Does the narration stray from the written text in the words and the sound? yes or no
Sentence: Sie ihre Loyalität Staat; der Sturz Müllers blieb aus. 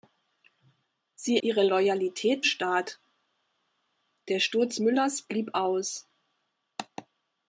no